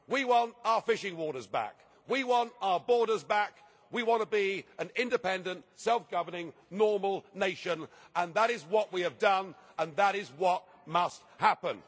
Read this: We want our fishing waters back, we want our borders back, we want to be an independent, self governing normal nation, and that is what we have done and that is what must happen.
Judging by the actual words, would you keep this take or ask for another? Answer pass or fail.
pass